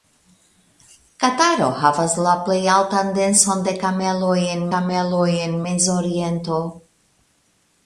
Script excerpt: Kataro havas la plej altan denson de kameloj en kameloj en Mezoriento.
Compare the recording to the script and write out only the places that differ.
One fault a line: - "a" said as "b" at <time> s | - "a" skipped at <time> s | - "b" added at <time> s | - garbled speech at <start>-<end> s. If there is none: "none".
none